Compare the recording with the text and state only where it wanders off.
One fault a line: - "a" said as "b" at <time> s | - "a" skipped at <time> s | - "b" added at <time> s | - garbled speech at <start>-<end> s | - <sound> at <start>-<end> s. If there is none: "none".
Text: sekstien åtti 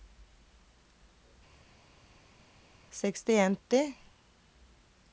none